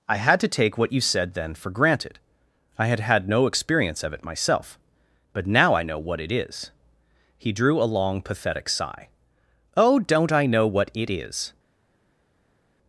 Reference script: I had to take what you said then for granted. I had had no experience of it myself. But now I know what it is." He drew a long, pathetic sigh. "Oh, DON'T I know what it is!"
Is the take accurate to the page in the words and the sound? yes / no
yes